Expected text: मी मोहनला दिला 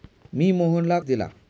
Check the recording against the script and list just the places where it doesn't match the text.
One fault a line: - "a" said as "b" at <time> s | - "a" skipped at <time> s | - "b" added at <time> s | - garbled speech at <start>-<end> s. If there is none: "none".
none